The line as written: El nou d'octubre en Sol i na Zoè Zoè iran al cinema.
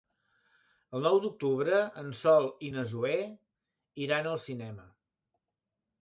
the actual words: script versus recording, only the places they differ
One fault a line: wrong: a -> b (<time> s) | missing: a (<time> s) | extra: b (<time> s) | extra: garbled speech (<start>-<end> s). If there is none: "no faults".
missing: Zoè (3.2 s)